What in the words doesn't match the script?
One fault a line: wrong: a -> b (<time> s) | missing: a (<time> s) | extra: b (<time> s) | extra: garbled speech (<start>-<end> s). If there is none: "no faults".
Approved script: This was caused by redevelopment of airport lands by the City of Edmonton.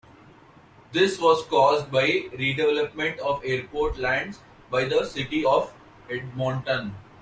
no faults